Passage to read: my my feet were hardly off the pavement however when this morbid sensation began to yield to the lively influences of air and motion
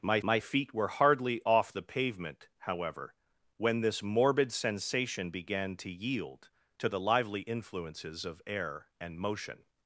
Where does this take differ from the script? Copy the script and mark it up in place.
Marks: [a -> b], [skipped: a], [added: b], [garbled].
my my feet were hardly off the pavement however when this morbid sensation began to yield to the lively influences of air and motion